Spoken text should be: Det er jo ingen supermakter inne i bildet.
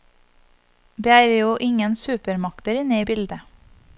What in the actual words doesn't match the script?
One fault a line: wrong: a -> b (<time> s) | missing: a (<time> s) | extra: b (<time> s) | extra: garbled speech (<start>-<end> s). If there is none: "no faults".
no faults